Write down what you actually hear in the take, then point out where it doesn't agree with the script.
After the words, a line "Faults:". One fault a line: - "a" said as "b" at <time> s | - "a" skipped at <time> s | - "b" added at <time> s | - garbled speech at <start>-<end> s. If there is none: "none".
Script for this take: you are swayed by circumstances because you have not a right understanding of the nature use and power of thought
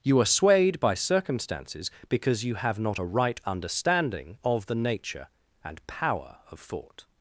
you are swayed by circumstances because you have not a right understanding of the nature and power of thought
Faults:
- "use" skipped at 5.3 s